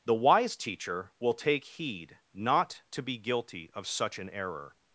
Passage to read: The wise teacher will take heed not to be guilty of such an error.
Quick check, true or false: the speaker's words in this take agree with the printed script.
true